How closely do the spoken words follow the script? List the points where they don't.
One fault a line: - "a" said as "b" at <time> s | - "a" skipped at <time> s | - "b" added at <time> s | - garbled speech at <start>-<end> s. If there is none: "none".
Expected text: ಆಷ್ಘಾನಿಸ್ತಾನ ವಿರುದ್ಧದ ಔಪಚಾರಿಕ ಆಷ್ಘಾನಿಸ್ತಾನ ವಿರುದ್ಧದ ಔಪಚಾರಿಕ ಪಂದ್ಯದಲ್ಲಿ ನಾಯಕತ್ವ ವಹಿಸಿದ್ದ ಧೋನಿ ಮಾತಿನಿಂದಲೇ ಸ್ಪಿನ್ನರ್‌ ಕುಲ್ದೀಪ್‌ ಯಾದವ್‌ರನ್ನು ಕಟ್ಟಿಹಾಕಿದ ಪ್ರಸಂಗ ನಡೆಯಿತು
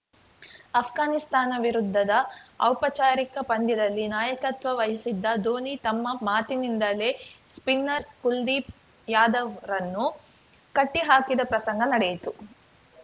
- "ಆಷ್ಘಾನಿಸ್ತಾನ ವಿರುದ್ಧದ ಔಪಚಾರಿಕ" skipped at 3.4 s
- "ತಮ್ಮ" added at 5.8 s